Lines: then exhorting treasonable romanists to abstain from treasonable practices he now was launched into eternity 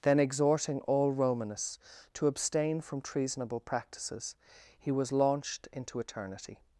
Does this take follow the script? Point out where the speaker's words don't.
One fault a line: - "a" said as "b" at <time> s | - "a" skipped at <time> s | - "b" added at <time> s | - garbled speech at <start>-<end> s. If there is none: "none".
- "treasonable" said as "all" at 0.8 s
- "now" skipped at 4.9 s